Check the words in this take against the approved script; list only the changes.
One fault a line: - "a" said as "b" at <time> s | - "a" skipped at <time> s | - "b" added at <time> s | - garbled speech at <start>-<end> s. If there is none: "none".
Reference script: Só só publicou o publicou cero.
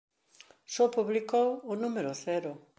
- "só" skipped at 0.9 s
- "publicou" said as "número" at 1.8 s